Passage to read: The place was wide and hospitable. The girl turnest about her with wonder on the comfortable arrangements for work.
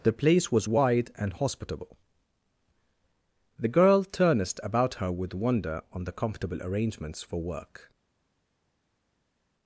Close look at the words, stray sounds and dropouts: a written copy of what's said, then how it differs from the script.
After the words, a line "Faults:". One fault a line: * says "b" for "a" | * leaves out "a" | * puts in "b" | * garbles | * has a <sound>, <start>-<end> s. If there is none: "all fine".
The place was wide and hospitable. The girl turnest about her with wonder on the comfortable arrangements for work.
Faults:
all fine